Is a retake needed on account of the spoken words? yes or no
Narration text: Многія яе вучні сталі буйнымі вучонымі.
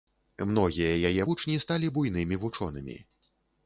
no